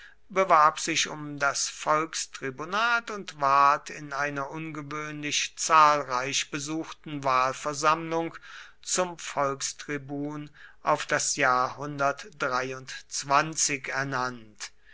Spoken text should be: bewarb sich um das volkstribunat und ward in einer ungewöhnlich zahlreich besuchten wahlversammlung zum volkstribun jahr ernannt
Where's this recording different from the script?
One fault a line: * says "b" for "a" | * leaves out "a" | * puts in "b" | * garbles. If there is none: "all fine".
* puts in "auf das"